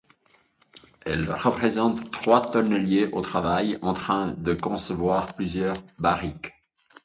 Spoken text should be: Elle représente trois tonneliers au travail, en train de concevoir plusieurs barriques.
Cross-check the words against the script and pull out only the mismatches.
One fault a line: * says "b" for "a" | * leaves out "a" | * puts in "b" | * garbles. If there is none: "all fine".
all fine